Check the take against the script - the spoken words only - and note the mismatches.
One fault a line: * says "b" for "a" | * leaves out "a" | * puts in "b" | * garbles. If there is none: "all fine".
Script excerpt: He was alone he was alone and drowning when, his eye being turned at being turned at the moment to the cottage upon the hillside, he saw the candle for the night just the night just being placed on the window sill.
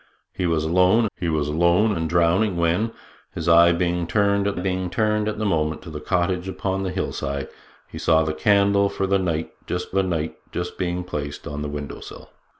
all fine